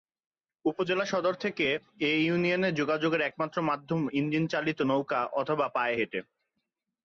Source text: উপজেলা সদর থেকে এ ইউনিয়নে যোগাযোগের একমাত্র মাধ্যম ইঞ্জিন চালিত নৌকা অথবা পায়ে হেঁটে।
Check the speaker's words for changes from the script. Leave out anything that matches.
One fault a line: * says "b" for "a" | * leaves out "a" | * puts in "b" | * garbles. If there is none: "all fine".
all fine